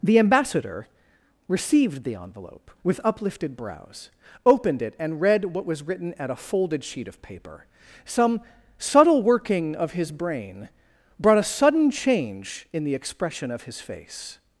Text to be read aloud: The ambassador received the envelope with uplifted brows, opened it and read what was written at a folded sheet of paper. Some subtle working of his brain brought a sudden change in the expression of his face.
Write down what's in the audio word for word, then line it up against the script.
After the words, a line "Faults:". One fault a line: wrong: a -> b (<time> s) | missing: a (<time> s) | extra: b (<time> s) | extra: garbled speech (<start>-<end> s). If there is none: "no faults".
The ambassador received the envelope with uplifted brows, opened it and read what was written at a folded sheet of paper. Some subtle working of his brain brought a sudden change in the expression of his face.
Faults:
no faults